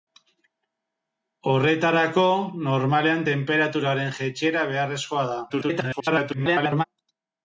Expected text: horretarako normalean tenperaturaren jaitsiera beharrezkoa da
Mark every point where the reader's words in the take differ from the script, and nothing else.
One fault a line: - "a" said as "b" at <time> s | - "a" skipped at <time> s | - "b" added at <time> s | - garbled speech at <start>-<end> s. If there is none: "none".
- garbled speech at 5.5-6.8 s